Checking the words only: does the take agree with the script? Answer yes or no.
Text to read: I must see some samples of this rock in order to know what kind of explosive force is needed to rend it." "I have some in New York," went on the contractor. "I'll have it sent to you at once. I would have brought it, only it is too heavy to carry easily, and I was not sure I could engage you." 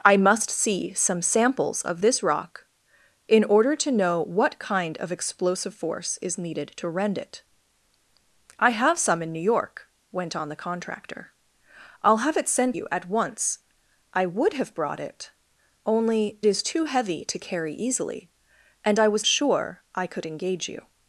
no